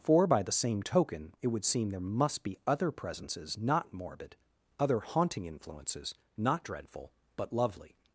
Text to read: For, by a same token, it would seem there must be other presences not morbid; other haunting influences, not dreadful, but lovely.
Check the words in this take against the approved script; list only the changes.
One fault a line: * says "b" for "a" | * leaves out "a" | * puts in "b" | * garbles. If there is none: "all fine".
* says "the" for "a"